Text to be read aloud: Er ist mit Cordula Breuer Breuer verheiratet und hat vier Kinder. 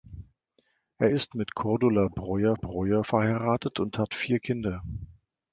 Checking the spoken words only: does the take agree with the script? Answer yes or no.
yes